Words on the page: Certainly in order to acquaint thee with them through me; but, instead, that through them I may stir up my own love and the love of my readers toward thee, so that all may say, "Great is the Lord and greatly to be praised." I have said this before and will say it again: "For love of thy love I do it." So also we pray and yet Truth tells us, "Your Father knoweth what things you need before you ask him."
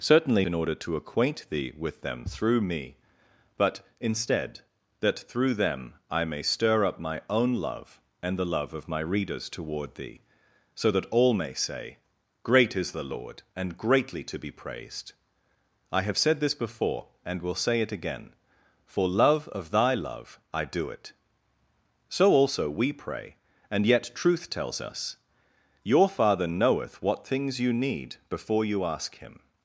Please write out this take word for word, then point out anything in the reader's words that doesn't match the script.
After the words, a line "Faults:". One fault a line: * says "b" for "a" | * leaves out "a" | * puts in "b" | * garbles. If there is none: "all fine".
Certainly in order to acquaint thee with them through me; but, instead, that through them I may stir up my own love and the love of my readers toward thee, so that all may say, "Great is the Lord and greatly to be praised." I have said this before and will say it again: "For love of thy love I do it." So also we pray and yet Truth tells us, "Your Father knoweth what things you need before you ask him."
Faults:
all fine